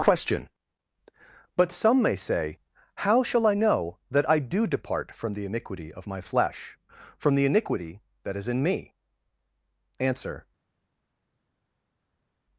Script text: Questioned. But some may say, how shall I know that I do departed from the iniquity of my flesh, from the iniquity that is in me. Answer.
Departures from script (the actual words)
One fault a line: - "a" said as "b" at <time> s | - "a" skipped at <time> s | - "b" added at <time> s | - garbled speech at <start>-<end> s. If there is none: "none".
- "Questioned" said as "Question" at 0.0 s
- "departed" said as "depart" at 4.7 s